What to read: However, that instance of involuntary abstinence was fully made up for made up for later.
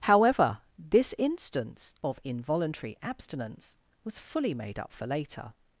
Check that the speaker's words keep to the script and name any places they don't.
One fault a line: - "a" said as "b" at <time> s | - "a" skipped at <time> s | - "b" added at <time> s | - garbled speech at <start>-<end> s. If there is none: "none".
- "that" said as "this" at 0.8 s
- "made up for" skipped at 5.0 s